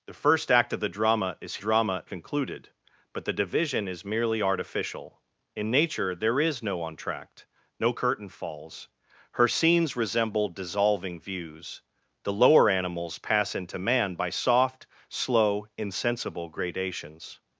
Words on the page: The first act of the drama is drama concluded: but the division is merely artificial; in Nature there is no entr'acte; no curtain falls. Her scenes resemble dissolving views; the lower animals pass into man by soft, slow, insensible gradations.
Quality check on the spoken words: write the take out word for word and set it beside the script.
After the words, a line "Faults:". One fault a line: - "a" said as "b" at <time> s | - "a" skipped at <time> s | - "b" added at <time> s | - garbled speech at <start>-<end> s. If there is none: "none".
The first act of the drama is drama concluded: but the division is merely artificial; in Nature there is no entr'acte; no curtain falls. Her scenes resemble dissolving views; the lower animals pass into man by soft, slow, insensible gradations.
Faults:
none